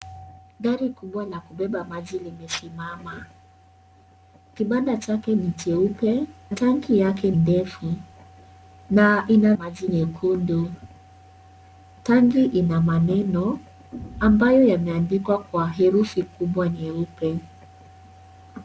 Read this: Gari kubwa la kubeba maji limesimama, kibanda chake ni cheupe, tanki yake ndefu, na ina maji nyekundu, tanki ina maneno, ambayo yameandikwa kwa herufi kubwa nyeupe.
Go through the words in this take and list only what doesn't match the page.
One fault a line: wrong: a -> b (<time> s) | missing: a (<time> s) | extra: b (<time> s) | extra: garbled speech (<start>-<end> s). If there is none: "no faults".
no faults